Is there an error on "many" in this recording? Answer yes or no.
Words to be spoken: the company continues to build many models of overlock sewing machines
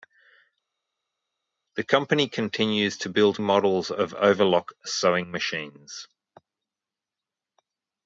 yes